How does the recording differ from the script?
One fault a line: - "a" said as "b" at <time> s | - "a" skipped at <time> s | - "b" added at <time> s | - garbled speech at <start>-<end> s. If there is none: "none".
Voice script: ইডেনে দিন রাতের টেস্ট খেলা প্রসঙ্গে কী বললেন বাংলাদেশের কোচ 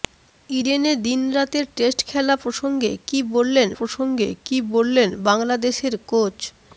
- "প্রসঙ্গে কী বললেন" added at 3.7 s